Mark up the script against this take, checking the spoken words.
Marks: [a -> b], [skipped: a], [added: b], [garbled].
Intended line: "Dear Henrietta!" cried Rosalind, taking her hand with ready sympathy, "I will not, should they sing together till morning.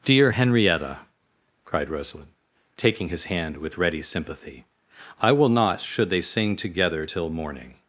"Dear Henrietta!" cried Rosalind, taking [her -> his] hand with ready sympathy, "I will not, should they sing together till morning.